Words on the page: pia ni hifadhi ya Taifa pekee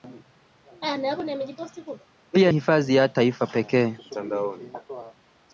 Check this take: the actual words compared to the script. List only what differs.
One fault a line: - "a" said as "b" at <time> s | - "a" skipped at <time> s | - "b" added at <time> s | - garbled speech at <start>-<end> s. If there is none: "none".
- "ni" skipped at 2.5 s